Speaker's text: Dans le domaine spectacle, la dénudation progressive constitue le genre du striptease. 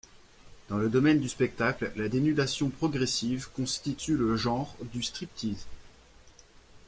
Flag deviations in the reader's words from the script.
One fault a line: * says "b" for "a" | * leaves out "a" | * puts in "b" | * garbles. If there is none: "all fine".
* puts in "du"